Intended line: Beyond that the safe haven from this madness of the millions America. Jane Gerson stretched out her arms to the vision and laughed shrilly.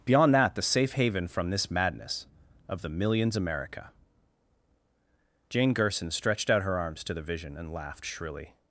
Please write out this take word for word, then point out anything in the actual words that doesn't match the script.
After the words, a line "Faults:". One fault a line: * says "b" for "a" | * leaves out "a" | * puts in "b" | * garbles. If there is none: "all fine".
Beyond that the safe haven from this madness of the millions America. Jane Gerson stretched out her arms to the vision and laughed shrilly.
Faults:
all fine